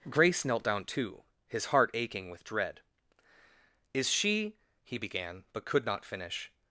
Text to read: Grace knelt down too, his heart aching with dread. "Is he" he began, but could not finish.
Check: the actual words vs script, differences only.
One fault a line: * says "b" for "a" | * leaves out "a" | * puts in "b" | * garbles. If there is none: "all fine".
* says "she" for "he"